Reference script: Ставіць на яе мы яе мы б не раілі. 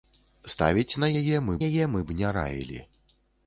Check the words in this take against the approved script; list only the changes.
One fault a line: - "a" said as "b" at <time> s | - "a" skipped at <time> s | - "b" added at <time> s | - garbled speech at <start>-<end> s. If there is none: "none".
none